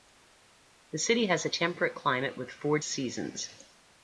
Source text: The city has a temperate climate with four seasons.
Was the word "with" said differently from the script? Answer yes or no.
no